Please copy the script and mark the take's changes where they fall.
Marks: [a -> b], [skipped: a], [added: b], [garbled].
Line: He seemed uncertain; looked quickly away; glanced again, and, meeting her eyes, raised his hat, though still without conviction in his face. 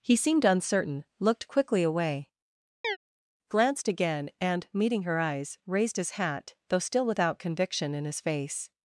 He seemed uncertain; looked quickly away; glanced again, and, meeting her eyes, raised his hat, though still without conviction in his face.